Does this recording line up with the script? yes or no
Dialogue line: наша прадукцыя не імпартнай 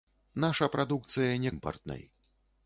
yes